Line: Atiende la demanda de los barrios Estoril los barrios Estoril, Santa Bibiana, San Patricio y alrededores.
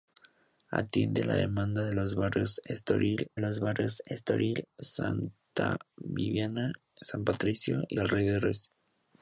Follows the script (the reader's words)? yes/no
yes